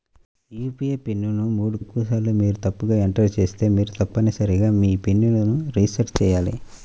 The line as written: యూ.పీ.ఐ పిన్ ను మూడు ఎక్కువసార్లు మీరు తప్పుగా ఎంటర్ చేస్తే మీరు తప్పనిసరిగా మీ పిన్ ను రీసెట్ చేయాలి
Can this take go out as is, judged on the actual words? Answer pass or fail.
pass